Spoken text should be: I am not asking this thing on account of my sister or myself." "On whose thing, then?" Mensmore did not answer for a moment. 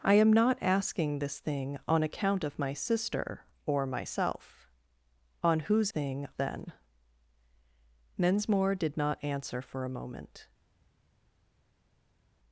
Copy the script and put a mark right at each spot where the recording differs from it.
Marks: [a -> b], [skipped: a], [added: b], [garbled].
I am not asking this thing on account of my sister or myself." "On whose thing, then?" Mensmore did not answer for a moment.